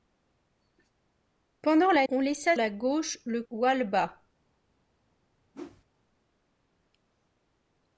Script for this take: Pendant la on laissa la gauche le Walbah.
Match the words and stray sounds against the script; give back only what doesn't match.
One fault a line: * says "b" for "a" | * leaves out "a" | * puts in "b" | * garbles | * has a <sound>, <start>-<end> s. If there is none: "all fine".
* has a whoosh, 5.5-5.8 s